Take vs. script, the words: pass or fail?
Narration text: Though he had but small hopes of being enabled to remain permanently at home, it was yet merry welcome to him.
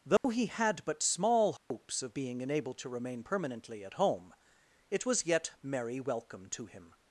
pass